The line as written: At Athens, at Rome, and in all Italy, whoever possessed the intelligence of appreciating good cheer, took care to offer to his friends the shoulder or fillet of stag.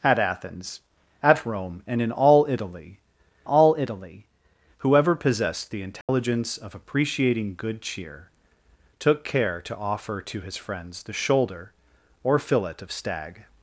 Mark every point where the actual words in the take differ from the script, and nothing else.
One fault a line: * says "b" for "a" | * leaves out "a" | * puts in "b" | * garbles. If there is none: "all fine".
* puts in "all Italy"